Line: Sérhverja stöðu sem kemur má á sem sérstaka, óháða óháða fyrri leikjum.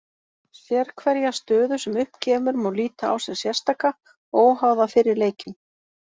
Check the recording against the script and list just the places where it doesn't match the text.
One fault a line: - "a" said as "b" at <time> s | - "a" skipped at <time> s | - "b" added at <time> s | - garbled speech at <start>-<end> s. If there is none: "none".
- "upp" added at 2.0 s
- "líta" added at 2.8 s
- "óháða" skipped at 4.9 s